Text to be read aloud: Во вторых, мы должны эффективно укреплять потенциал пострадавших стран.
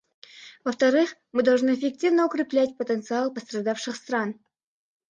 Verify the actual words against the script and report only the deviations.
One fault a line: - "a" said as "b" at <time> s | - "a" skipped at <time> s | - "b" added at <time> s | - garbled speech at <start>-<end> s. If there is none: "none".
none